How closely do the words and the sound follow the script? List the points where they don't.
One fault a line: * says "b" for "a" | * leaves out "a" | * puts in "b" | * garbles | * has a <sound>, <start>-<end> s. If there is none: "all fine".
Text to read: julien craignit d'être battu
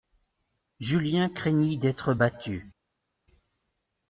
all fine